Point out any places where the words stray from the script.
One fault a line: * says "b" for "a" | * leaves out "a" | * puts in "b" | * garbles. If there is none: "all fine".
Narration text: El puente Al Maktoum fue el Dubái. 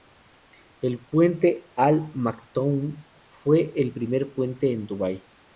* puts in "primer puente en"